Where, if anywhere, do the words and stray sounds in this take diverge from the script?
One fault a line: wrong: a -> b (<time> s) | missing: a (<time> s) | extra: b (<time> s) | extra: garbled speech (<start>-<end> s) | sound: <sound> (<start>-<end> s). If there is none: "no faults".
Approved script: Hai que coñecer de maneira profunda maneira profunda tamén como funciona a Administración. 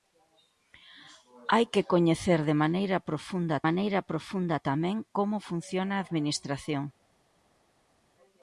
no faults